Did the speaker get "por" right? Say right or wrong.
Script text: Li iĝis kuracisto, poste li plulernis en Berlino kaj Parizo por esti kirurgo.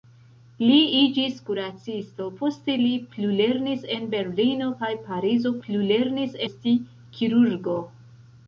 wrong